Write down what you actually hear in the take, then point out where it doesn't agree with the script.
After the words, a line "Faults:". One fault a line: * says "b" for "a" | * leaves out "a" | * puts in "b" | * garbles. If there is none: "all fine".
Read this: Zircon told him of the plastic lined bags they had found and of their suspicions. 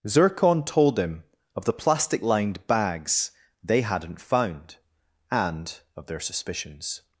Zircon told him of the plastic lined bags they hadn't found and of their suspicions.
Faults:
* says "hadn't" for "had"